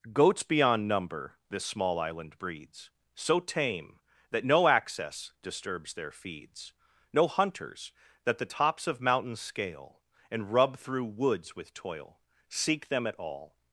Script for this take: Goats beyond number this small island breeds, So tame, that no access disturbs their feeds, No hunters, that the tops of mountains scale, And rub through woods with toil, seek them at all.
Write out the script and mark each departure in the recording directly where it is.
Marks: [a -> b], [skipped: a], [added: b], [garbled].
Goats beyond number this small island breeds, So tame, that no access disturbs their feeds, No hunters, that the tops of mountains scale, And rub through woods with toil, seek them at all.